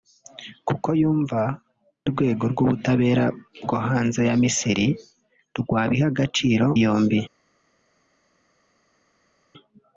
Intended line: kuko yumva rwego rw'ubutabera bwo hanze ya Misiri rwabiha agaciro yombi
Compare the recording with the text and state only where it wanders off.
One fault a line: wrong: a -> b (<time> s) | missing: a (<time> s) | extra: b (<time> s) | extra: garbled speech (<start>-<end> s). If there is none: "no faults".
no faults